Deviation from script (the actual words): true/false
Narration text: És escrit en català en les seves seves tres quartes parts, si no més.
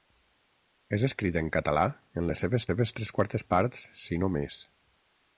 false